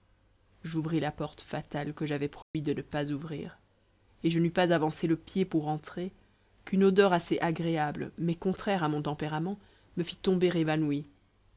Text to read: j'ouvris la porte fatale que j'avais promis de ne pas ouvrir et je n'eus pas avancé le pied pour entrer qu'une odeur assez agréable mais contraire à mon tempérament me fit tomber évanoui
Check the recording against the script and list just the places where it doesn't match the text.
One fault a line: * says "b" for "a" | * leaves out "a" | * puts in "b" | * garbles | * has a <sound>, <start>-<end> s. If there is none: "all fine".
* has a dropout, 2.4-2.5 s